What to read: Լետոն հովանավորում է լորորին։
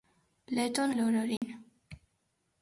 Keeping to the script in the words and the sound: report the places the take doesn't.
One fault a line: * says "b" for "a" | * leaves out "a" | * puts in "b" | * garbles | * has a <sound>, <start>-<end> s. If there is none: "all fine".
* leaves out "հովանավորում"
* has a dropout, 1.4-1.4 s